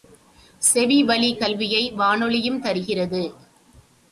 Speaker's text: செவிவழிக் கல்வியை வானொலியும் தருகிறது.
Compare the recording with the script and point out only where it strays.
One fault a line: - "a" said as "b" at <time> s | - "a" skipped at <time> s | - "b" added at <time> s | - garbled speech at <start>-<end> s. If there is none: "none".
none